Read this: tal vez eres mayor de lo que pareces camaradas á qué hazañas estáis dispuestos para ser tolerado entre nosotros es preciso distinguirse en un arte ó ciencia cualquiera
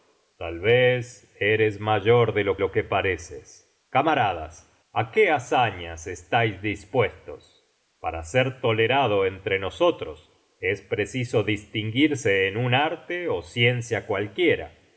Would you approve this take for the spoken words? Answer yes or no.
no